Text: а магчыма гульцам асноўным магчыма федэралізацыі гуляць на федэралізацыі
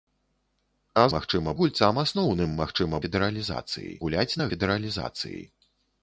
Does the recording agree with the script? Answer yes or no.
yes